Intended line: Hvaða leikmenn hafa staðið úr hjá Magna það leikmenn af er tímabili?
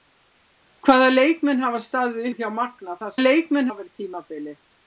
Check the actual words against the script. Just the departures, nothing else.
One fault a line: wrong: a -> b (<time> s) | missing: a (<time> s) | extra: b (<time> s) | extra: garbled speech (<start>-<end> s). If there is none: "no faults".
no faults